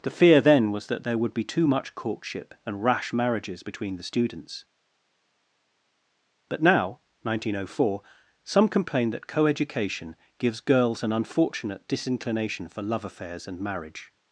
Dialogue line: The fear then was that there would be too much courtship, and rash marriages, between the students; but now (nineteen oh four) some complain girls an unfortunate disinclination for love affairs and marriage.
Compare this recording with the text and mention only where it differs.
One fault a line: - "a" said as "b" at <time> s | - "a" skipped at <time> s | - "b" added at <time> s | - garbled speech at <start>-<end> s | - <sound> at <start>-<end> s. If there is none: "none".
- "that coeducation gives" added at 9.1 s